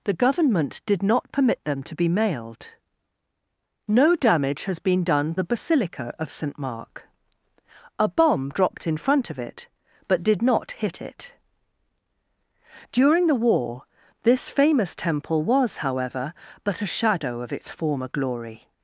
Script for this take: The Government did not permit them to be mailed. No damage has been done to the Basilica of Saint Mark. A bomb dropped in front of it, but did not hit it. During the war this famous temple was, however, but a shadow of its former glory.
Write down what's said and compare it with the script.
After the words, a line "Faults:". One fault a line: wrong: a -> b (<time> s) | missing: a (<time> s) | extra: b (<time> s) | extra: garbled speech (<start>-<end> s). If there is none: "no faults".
The Government did not permit them to be mailed. No damage has been done the Basilica of Saint Mark. A bomb dropped in front of it, but did not hit it. During the war this famous temple was, however, but a shadow of its former glory.
Faults:
missing: to (5.3 s)